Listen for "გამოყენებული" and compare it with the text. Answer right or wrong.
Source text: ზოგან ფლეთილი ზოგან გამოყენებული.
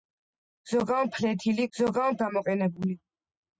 right